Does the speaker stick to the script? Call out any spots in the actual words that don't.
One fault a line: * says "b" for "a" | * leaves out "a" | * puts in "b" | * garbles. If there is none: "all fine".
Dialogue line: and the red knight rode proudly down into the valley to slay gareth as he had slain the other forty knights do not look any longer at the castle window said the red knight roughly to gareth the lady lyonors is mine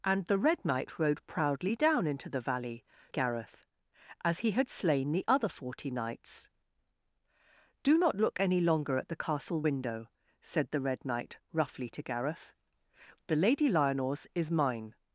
* leaves out "to slay"